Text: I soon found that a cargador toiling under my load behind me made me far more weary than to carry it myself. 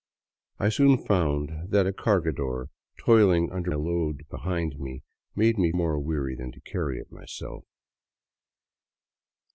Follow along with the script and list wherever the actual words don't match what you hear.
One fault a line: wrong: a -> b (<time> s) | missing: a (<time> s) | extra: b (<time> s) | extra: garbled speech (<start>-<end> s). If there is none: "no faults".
missing: my (3.7 s)
missing: far (5.7 s)